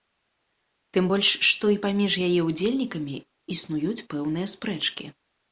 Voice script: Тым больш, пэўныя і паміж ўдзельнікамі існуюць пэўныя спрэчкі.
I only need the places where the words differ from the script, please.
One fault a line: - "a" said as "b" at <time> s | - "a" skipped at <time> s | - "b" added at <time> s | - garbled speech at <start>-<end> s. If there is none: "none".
- "пэўныя" said as "што" at 1.5 s
- "яе" added at 2.3 s